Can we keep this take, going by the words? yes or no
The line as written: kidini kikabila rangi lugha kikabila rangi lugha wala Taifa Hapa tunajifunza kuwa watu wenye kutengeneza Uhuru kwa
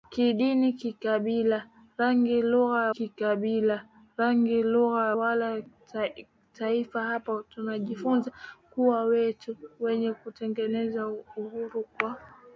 yes